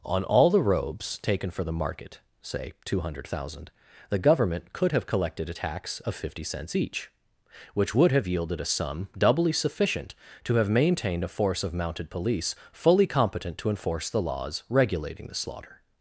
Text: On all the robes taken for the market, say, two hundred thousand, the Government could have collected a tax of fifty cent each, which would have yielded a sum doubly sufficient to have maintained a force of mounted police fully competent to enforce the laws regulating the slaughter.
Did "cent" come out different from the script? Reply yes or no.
yes